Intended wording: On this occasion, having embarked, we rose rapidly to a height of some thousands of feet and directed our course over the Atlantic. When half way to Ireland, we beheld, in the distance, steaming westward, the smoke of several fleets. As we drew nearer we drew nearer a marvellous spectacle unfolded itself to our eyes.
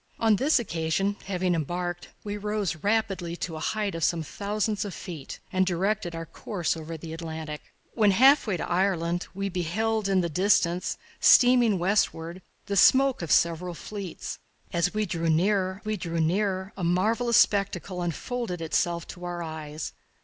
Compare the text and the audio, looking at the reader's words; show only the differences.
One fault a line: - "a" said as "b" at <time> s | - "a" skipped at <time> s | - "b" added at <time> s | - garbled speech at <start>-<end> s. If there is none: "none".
none